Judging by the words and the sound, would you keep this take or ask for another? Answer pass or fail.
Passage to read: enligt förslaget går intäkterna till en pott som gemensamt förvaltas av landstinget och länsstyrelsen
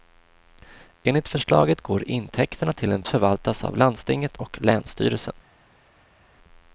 fail